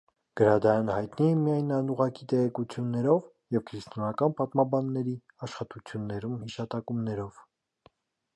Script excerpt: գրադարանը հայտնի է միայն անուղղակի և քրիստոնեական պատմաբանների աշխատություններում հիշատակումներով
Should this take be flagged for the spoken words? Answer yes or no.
yes